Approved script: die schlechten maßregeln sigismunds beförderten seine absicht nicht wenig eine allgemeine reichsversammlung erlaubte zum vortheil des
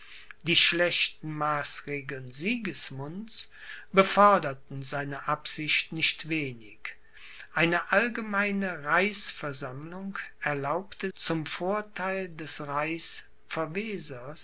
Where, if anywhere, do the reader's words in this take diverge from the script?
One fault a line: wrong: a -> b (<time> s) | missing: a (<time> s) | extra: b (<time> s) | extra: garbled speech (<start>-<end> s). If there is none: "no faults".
no faults